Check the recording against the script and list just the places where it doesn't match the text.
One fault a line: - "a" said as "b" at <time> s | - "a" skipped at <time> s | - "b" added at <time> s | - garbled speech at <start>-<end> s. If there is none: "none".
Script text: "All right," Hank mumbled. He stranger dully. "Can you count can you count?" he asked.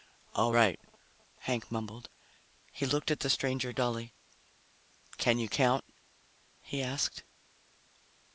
- "stranger dully Can you count" said as "looked at the stranger dully" at 2.9 s